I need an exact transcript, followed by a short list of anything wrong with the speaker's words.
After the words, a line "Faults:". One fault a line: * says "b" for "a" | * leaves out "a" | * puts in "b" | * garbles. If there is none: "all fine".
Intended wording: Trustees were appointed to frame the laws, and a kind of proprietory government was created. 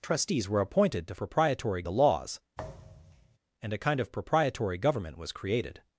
Trustees were appointed to proprietory the laws, and a kind of proprietory government was created.
Faults:
* says "proprietory" for "frame"